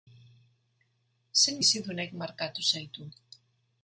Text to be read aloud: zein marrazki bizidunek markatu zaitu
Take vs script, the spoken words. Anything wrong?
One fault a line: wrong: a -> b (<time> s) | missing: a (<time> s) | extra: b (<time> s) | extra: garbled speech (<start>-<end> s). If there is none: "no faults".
missing: marrazki (1.6 s)